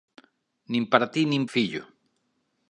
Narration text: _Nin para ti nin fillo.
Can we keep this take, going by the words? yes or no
yes